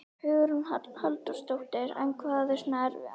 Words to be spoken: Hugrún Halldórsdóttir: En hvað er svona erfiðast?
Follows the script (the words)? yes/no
yes